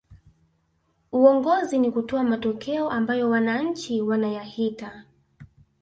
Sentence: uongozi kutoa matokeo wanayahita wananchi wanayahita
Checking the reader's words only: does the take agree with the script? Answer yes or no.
no